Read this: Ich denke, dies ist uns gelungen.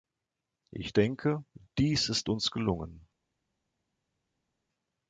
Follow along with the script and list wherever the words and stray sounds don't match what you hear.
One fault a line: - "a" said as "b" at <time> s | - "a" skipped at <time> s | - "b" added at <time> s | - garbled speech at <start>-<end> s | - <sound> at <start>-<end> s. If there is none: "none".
none